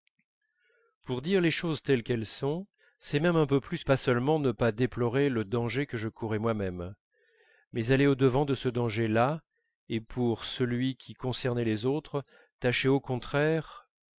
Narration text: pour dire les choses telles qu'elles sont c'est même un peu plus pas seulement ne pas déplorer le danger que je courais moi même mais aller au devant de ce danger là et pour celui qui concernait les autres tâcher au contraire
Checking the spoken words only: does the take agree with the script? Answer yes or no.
yes